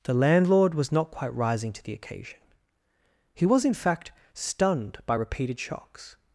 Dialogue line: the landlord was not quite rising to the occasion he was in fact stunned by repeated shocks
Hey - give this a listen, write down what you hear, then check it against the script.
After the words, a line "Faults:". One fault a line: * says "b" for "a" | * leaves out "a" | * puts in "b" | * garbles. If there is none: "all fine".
the landlord was not quite rising to the occasion he was in fact stunned by repeated shocks
Faults:
all fine